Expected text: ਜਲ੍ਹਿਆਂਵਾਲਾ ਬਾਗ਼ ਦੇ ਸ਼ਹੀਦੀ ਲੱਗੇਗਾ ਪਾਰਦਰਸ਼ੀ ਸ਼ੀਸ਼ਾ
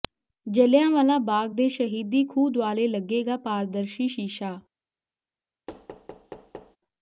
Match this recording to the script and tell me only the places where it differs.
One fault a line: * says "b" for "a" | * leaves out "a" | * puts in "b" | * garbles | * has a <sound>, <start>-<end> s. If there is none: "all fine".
* puts in "ਖੂਹ ਦੁਆਲੇ"
* has a thud, 5.7-6.8 s